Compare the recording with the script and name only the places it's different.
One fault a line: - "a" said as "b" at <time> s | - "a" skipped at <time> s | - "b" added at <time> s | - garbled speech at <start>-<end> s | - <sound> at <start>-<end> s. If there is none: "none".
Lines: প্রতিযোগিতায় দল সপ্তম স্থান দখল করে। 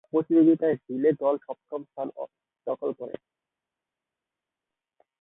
- "রিলে" added at 0.8 s